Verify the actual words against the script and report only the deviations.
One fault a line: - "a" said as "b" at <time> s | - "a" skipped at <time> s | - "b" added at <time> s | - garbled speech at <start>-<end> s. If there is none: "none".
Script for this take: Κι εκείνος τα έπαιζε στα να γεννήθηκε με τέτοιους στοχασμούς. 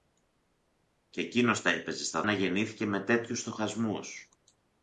none